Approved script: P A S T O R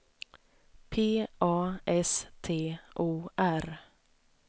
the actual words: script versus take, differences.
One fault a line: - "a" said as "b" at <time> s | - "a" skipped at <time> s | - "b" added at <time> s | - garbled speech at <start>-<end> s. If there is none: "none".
none